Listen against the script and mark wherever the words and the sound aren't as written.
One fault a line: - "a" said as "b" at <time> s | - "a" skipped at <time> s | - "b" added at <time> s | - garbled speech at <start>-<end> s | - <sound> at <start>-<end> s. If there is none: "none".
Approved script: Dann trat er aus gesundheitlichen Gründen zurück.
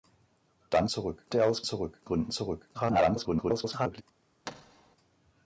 - "trat" said as "zurück" at 0.9 s
- "gesundheitlichen" said as "zurück" at 1.6 s
- garbled speech at 2.7-4.0 s
- thud at 4.4-5.0 s